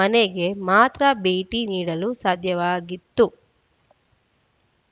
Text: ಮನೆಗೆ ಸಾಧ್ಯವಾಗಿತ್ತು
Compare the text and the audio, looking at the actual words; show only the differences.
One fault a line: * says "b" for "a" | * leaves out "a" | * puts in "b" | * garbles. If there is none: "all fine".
* puts in "ಮಾತ್ರ ಭೇಟಿ ನೀಡಲು"